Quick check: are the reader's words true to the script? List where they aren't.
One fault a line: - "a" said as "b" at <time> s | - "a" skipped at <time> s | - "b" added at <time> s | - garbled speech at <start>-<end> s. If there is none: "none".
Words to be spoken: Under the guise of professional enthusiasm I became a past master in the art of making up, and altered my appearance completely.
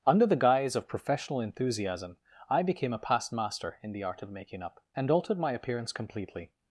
none